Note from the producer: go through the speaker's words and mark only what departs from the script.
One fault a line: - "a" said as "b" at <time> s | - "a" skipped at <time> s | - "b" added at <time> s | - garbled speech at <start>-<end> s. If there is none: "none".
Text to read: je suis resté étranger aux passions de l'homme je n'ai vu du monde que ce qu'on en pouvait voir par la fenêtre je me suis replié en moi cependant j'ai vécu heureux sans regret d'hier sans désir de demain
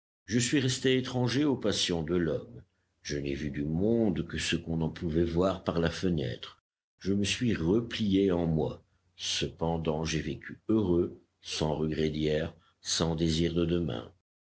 none